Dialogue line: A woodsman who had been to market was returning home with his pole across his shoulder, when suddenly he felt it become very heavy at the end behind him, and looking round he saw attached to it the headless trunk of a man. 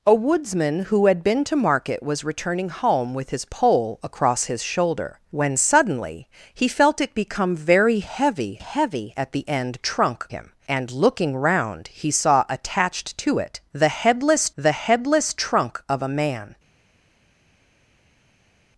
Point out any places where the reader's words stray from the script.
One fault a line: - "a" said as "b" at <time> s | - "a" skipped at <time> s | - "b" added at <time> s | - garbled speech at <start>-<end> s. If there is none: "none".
- "heavy" added at 8.6 s
- "behind" said as "trunk" at 9.8 s
- "the headless" added at 14.6 s